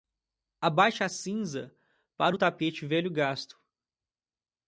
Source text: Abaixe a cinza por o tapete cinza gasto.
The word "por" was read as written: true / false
false